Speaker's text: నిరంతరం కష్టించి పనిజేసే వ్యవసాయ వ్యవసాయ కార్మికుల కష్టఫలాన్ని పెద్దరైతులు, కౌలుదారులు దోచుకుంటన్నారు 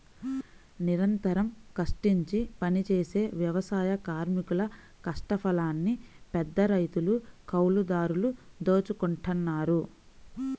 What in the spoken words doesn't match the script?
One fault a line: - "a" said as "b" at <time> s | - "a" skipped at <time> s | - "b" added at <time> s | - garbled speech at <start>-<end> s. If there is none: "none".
- "వ్యవసాయ" skipped at 3.9 s